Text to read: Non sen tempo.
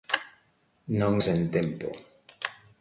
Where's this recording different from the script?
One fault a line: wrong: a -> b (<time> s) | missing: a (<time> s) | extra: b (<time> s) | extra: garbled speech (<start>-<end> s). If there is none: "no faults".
no faults